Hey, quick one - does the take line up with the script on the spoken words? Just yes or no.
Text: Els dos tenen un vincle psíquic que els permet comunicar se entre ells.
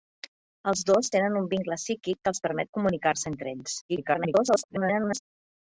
no